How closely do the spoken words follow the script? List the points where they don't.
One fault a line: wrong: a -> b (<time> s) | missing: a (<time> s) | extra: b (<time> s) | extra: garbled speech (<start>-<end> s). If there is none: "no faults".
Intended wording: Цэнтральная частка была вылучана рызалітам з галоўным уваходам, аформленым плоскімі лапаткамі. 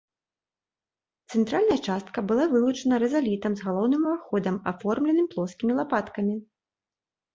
no faults